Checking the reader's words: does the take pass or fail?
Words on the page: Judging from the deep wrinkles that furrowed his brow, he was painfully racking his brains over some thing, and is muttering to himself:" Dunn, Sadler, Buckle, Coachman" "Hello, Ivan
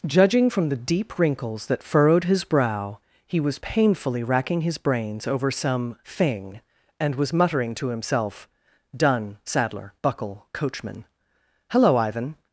fail